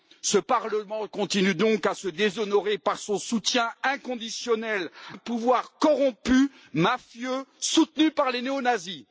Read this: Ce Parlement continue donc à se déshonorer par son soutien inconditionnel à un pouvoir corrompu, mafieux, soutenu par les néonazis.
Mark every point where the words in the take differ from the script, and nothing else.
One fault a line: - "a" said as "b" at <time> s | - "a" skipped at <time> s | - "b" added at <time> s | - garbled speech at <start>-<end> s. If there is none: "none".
- "à" skipped at 4.9 s